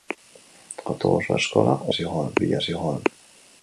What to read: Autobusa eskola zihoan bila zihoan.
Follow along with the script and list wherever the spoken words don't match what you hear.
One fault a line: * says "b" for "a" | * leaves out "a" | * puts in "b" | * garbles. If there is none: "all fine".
all fine